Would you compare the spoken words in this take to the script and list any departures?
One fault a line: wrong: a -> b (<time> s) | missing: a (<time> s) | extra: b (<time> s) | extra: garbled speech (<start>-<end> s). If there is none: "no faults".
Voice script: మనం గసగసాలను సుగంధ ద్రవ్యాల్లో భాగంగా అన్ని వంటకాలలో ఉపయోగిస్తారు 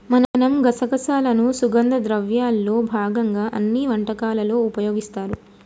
no faults